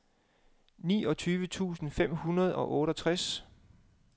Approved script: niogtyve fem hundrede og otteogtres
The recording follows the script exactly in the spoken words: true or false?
false